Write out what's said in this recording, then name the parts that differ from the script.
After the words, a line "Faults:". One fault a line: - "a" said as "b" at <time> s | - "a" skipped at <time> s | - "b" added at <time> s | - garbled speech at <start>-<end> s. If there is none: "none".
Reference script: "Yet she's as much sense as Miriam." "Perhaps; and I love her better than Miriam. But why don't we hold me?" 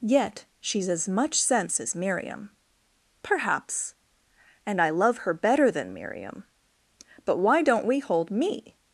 "Yet she's as much sense as Miriam." "Perhaps; and I love her better than Miriam. But why don't we hold me?"
Faults:
none